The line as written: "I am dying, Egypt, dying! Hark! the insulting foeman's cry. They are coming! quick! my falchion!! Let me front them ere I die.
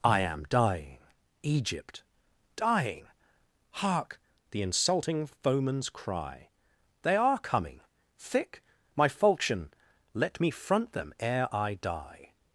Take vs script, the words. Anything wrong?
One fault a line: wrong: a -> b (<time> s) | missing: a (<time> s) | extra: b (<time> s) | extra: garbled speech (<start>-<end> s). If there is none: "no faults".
wrong: quick -> thick (8.2 s)